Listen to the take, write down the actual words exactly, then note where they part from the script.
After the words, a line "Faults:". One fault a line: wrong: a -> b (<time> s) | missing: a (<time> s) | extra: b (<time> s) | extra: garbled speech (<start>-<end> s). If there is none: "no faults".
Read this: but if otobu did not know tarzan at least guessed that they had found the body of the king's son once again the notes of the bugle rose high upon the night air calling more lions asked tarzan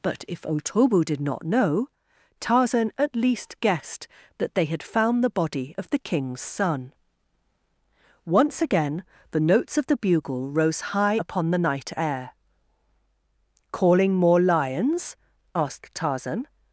but if otobu did not know tarzan at least guessed that they had found the body of the king's son once again the notes of the bugle rose high upon the night air calling more lions asked tarzan
Faults:
no faults